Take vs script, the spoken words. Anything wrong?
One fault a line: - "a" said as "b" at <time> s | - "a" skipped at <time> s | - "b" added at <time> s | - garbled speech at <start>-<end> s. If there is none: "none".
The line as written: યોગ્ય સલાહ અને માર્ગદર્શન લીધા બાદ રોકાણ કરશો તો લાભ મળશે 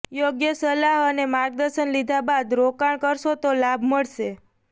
none